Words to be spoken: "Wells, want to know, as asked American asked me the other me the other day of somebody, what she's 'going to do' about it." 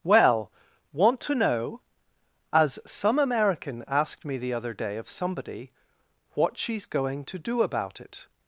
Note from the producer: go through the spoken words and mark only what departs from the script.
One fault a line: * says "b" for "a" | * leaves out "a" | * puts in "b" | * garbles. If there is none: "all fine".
* says "Well" for "Wells"
* says "some" for "asked"
* leaves out "me the other"